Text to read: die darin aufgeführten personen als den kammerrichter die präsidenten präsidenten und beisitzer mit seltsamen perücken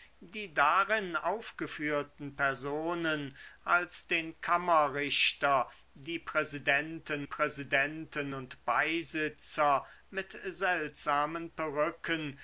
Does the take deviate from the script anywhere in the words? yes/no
no